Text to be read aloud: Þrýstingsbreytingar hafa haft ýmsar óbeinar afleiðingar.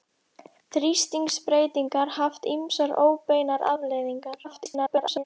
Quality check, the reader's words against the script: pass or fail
fail